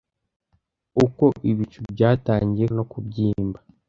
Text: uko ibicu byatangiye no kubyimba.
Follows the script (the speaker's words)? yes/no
yes